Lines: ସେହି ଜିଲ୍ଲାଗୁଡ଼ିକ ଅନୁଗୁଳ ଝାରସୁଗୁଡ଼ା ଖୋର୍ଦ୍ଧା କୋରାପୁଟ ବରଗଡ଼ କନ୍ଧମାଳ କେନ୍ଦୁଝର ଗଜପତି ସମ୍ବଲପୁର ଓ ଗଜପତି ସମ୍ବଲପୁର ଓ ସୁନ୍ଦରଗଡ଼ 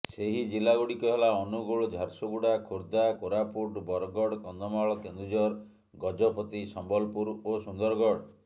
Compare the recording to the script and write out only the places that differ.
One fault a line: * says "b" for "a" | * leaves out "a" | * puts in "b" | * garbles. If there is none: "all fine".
* puts in "ହେଲା"
* leaves out "ଗଜପତି ସମ୍ବଲପୁର ଓ"